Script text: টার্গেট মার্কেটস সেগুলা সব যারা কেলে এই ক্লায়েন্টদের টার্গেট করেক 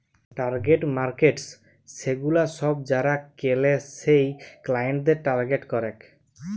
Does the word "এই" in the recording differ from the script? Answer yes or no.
yes